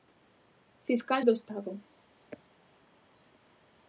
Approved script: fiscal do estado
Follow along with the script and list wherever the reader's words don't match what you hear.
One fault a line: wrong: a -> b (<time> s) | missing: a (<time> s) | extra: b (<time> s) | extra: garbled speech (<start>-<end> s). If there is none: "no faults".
no faults